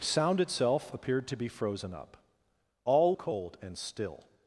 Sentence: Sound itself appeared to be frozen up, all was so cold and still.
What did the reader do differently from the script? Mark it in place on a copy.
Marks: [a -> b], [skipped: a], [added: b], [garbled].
Sound itself appeared to be frozen up, all [skipped: was so] cold and still.